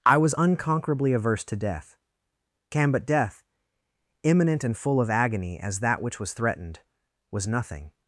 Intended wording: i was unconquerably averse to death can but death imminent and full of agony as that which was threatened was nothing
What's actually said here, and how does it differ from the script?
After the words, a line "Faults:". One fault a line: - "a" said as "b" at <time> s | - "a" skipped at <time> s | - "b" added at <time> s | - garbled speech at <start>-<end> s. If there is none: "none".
i was unconquerably averse to death can but death imminent and full of agony as that which was threatened was nothing
Faults:
none